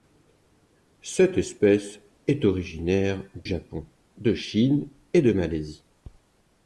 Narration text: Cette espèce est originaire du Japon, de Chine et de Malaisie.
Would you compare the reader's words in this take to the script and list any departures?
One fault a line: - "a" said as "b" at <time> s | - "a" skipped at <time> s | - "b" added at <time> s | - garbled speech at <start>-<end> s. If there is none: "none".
- "du" skipped at 3.2 s